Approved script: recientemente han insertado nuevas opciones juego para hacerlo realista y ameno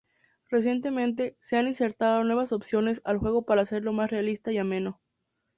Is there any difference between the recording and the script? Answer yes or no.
yes